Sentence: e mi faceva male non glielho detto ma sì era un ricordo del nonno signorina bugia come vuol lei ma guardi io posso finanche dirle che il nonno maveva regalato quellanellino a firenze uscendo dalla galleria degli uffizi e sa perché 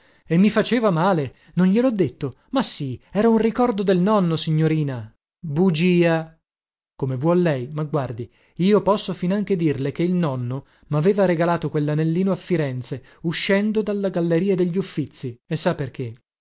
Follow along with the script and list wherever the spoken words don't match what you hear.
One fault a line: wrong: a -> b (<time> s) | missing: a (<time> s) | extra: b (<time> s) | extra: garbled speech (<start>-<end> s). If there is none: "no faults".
no faults